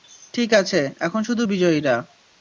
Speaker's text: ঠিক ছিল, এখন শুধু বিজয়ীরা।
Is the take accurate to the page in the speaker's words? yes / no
no